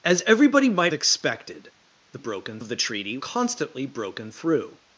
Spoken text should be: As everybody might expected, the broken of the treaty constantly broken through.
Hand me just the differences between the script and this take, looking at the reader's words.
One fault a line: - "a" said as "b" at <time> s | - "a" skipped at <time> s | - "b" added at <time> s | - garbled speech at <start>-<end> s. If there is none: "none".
none